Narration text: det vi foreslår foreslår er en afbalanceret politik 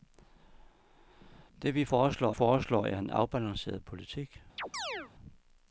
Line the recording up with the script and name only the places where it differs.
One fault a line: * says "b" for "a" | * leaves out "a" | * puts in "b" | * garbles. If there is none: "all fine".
all fine